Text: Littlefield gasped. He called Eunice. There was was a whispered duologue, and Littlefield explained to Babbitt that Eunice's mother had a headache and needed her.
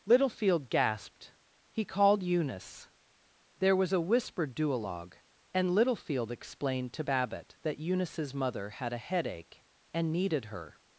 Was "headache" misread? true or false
false